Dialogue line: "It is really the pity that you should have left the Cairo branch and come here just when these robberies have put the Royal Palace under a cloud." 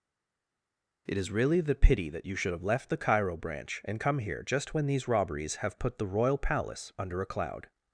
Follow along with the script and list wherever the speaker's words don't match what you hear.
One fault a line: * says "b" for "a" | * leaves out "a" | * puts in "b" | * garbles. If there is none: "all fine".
all fine